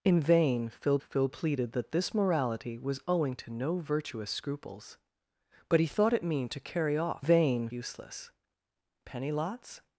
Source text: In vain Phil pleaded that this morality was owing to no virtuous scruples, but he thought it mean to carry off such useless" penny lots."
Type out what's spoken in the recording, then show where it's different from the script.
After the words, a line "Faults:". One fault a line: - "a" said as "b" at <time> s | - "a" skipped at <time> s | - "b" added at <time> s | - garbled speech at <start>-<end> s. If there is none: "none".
In vain Phil Phil pleaded that this morality was owing to no virtuous scruples, but he thought it mean to carry off vain useless" penny lots."
Faults:
- "Phil" added at 1.0 s
- "such" said as "vain" at 7.2 s